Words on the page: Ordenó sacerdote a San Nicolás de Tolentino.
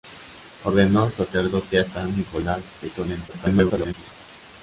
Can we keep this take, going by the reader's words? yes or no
no